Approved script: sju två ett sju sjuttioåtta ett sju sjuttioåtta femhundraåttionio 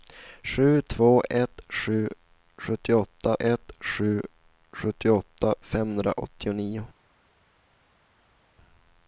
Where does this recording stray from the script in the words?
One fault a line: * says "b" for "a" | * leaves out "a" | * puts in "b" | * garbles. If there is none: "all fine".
all fine